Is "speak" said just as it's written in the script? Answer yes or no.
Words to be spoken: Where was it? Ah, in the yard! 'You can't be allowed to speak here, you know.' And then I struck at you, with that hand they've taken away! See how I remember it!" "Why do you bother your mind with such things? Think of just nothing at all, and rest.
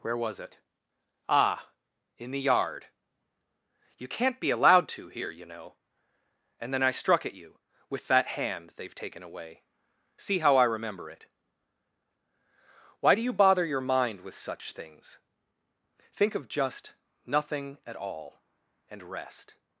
no